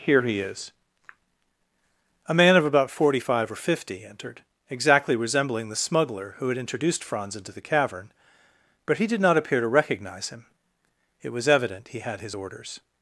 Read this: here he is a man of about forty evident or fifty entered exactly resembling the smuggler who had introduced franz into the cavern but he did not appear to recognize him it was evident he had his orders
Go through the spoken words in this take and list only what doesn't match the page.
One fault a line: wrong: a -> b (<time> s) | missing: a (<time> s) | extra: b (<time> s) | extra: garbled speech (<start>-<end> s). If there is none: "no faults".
wrong: evident -> five (3.2 s)